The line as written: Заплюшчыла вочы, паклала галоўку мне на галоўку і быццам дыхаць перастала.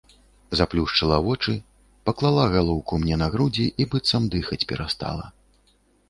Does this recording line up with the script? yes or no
no